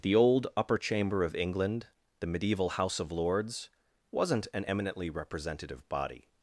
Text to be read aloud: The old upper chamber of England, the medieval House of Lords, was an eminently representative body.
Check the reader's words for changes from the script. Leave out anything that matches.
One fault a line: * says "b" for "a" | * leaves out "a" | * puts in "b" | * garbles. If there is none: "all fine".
* says "wasn't" for "was"